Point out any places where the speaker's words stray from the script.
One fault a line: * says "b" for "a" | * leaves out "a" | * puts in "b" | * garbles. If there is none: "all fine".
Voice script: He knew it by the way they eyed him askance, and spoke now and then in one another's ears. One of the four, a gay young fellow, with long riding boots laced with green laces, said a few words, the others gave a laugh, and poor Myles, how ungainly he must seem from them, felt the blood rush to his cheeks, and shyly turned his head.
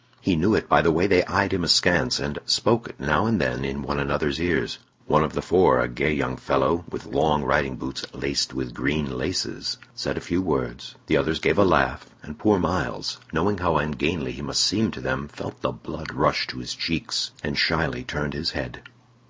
* puts in "knowing"
* says "to" for "from"